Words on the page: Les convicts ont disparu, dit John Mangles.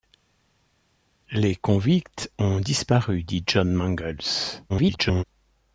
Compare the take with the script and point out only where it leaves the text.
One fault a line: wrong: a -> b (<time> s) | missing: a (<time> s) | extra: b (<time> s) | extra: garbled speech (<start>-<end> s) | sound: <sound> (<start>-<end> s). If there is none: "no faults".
extra: garbled speech (4.7-5.2 s)